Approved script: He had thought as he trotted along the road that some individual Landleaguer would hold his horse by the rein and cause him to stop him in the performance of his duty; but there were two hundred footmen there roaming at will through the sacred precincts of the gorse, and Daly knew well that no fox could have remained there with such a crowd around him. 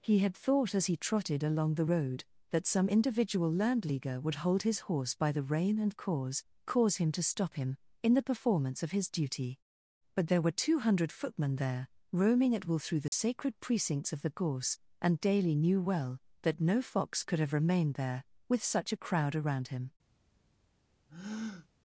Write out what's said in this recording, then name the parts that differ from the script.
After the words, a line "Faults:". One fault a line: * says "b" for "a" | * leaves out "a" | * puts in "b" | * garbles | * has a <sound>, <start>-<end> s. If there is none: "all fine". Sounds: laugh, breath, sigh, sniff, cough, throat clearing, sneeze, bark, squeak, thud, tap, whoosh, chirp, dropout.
He had thought as he trotted along the road that some individual Landleaguer would hold his horse by the rein and cause cause him to stop him in the performance of his duty; but there were two hundred footmen there roaming at will through the sacred precincts of the gorse, and Daly knew well that no fox could have remained there with such a crowd around him.
Faults:
* puts in "cause"
* has a dropout, 13.1-13.1 s
* has a breath, 21.1-21.7 s